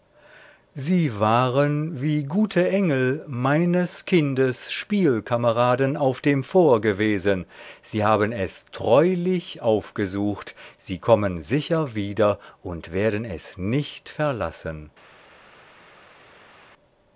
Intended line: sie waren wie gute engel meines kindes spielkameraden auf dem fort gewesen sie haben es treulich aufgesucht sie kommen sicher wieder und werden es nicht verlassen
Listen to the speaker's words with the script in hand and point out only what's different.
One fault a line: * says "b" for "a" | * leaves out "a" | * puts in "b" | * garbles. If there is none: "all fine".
all fine